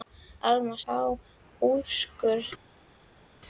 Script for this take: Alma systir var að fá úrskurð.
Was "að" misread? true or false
true